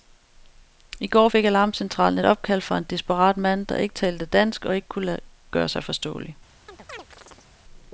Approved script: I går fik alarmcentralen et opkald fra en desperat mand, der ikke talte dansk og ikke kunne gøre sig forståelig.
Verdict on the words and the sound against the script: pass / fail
fail